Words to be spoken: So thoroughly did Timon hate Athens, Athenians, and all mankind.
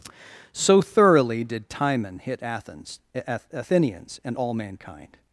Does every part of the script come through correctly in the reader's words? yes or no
no